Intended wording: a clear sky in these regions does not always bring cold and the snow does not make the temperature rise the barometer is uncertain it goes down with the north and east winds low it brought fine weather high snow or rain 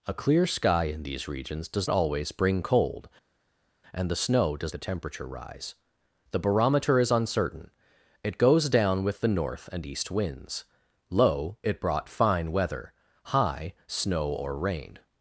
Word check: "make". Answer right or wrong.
wrong